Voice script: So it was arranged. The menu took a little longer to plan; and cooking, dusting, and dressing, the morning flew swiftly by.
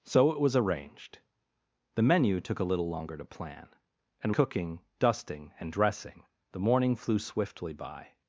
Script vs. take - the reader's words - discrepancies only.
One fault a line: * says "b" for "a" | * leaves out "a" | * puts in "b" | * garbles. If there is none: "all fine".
all fine